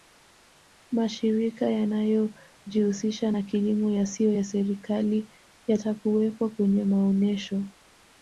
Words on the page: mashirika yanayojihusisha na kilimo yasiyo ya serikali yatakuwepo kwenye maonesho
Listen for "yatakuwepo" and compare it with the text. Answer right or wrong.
right